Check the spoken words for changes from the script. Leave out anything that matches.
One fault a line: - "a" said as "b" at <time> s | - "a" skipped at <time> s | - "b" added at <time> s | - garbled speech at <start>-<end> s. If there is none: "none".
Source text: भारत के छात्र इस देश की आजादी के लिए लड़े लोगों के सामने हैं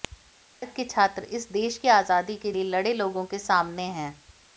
none